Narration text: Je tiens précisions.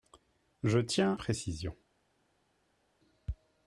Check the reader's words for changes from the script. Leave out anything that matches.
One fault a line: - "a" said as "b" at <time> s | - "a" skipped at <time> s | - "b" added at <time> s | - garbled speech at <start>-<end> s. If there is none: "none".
none